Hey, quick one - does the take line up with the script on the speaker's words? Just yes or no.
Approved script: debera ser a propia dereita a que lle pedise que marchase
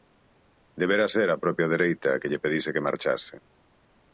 yes